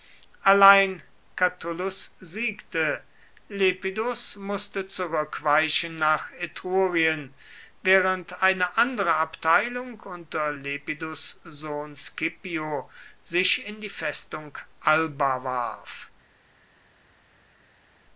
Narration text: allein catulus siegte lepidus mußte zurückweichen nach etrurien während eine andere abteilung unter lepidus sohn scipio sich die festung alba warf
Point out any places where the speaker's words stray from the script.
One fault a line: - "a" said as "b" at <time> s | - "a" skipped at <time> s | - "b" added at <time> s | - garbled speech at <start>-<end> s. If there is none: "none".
- "in" added at 13.7 s